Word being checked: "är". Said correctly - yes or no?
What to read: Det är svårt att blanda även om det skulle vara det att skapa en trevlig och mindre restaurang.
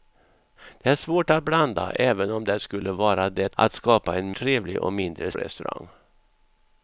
yes